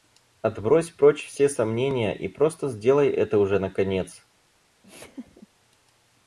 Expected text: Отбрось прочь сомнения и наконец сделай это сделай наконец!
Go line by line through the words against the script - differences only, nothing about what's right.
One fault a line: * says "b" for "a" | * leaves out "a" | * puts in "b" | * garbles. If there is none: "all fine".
* puts in "все"
* says "просто" for "наконец"
* says "уже" for "сделай"